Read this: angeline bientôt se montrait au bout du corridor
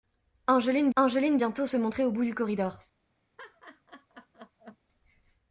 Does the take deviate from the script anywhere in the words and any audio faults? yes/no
yes